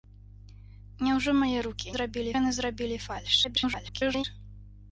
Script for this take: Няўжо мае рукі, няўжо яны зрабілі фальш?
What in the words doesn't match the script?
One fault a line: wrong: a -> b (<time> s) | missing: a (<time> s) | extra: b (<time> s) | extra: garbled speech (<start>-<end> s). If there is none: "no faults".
wrong: няўжо -> зрабілі (2.0 s)
extra: garbled speech (3.4-4.2 s)